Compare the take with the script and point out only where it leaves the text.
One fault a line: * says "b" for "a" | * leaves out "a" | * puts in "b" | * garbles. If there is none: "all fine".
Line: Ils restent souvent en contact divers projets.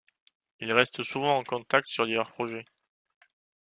* puts in "sur"